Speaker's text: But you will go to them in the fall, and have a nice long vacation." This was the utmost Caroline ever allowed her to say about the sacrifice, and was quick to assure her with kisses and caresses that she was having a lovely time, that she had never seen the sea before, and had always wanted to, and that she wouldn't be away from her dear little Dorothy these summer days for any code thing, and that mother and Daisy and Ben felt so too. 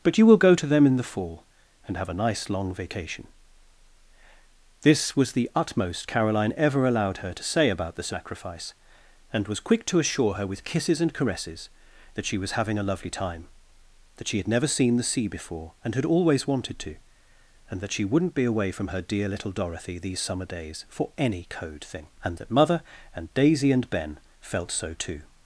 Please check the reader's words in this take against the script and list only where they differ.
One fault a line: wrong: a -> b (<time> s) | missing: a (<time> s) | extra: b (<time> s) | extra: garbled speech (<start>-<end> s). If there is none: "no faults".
no faults